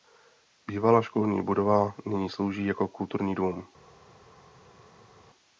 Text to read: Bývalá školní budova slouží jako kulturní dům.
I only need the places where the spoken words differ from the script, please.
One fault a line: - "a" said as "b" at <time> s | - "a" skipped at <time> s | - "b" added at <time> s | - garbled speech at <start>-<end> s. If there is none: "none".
- "nyní" added at 2.0 s